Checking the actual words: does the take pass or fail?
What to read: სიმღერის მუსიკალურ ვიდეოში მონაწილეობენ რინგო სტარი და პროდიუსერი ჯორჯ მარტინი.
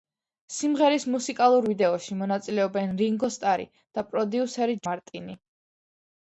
fail